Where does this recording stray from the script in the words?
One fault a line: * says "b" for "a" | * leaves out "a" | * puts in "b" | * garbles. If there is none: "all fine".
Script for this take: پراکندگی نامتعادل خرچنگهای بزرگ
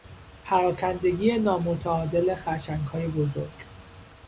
all fine